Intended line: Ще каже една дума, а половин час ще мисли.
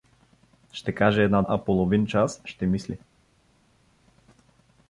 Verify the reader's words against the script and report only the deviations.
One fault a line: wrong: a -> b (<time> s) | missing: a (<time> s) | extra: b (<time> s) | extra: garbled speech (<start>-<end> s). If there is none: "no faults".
missing: дума (1.4 s)